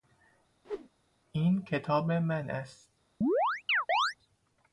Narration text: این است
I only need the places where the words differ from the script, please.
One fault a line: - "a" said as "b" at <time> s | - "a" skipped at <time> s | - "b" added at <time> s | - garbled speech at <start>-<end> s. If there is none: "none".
- "کتاب من" added at 1.6 s